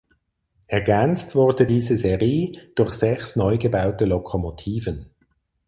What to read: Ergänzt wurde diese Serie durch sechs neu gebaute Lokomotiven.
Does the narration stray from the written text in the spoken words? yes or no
no